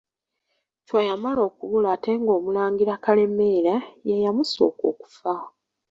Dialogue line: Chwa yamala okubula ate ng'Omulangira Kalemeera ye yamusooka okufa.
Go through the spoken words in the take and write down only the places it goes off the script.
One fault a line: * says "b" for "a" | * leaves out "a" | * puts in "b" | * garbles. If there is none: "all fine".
all fine